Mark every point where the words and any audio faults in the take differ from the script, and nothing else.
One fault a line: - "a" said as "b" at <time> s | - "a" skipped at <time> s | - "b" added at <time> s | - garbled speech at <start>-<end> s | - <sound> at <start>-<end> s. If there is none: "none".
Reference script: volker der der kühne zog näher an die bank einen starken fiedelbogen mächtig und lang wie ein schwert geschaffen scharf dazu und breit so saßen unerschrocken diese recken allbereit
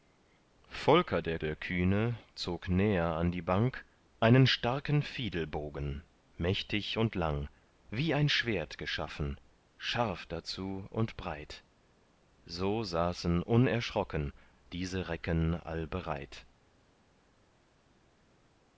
none